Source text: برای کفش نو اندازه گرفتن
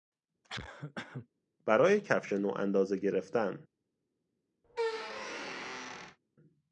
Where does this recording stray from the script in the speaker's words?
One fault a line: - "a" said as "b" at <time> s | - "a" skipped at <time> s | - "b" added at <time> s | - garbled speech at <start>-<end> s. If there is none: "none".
none